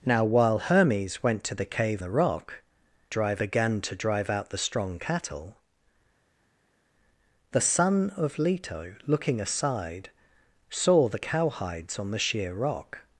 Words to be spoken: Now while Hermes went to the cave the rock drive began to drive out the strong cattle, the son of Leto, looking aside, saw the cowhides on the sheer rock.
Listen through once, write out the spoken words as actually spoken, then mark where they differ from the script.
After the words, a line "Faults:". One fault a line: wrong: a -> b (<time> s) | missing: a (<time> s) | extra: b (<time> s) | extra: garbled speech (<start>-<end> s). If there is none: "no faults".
Now while Hermes went to the cave the rock drive began to drive out the strong cattle, the son of Leto, looking aside, saw the cowhides on the sheer rock.
Faults:
no faults